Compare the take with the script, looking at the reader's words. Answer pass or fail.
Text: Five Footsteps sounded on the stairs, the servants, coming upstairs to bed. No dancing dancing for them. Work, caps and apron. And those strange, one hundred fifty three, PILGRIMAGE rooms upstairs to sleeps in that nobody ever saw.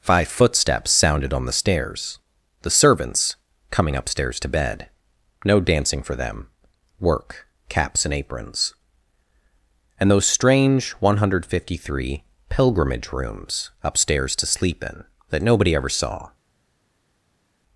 fail